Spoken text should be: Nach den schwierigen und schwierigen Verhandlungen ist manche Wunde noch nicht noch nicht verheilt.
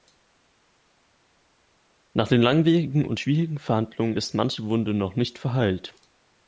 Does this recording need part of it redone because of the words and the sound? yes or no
yes